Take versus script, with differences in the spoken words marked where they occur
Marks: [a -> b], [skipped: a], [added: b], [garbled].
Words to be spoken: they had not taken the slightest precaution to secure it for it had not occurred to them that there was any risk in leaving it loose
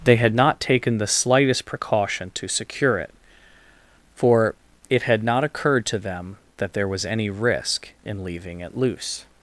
they had not taken the slightest precaution to secure it for it had not occurred to them that there was any risk in leaving it loose